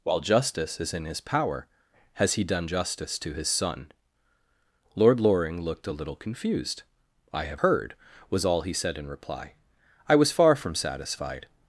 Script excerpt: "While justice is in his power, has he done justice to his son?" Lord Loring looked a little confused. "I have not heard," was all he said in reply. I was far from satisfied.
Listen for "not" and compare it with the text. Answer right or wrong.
wrong